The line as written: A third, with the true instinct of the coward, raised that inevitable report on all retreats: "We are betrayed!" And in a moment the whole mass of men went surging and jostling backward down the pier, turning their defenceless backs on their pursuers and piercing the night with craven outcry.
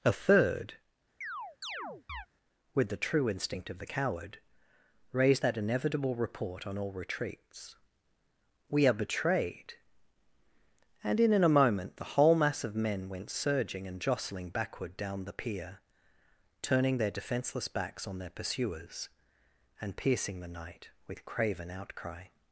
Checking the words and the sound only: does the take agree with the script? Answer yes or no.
no